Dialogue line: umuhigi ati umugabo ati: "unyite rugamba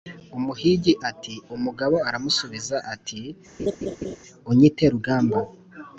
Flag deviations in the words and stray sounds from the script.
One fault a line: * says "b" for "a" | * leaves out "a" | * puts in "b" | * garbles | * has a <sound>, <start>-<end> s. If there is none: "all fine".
* puts in "aramusubiza"
* has a laugh, 3.6-4.2 s